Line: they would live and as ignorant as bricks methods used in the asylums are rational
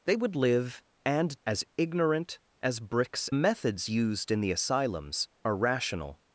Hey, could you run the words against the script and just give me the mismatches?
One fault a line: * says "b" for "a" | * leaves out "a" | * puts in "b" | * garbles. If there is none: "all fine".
all fine